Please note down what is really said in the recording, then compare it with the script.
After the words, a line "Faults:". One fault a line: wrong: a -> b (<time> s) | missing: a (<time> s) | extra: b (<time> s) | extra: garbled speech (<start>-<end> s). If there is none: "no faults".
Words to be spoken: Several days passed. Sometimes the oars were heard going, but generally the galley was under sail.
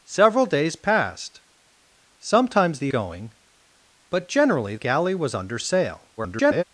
Several days passed. Sometimes the going, but generally galley was under sail. [garbled]
Faults:
missing: oars were heard (2.9 s)
missing: the (4.7 s)
extra: garbled speech (6.2-6.6 s)